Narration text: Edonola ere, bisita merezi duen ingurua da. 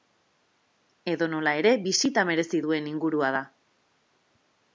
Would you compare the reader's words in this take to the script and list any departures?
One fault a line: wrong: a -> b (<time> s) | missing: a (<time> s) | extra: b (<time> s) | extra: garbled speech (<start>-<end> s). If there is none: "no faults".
no faults